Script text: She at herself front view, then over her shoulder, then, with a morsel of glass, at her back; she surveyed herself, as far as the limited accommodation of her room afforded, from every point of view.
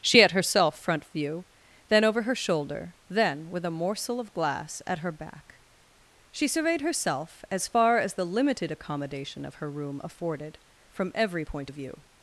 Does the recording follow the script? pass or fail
pass